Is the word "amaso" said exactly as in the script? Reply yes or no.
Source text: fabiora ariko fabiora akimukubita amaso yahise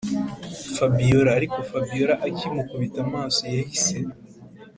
yes